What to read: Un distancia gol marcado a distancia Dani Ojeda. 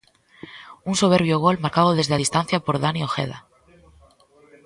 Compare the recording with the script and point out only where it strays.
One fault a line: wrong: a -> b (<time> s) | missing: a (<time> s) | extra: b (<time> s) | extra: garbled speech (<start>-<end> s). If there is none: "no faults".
wrong: distancia -> soberbio (0.9 s)
extra: desde (1.9 s)
extra: por (2.6 s)